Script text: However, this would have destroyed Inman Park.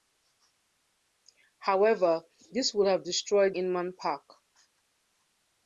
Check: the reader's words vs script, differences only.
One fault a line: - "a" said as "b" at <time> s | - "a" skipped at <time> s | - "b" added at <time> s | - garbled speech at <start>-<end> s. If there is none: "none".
none